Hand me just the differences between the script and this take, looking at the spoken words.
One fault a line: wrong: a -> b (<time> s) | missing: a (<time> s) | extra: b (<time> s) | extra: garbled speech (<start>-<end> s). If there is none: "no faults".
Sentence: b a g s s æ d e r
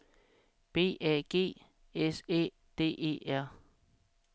missing: s (2.2 s)